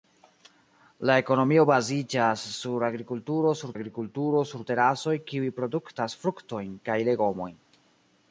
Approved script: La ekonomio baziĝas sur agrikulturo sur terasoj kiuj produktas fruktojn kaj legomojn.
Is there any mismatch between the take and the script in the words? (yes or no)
yes